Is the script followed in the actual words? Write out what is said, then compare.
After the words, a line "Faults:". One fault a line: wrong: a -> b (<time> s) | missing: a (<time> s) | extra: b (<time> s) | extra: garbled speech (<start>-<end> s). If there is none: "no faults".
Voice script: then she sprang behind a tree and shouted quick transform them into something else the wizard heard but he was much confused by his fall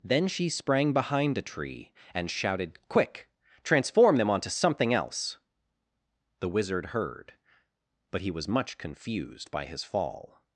then she sprang behind a tree and shouted quick transform them onto something else the wizard heard but he was much confused by his fall
Faults:
wrong: into -> onto (4.3 s)